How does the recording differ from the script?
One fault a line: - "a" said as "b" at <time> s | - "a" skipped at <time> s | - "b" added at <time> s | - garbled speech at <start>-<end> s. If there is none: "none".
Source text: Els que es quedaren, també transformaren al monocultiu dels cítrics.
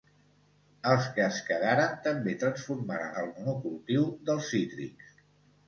none